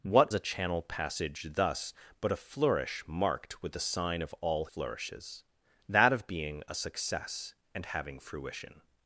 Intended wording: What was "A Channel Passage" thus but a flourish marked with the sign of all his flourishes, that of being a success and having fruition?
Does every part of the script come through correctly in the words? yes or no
no